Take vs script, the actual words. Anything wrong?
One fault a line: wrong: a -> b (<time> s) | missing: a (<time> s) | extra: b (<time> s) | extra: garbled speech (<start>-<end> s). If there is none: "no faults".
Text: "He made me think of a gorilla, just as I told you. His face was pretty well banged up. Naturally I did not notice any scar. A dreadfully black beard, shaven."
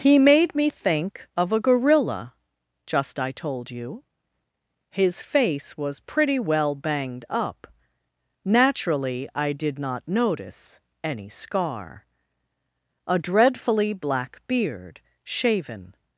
missing: as (3.2 s)